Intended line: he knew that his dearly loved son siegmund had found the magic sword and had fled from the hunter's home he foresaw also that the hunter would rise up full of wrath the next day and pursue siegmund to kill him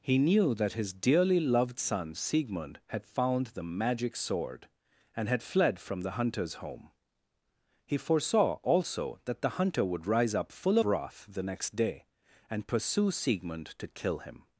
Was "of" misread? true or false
true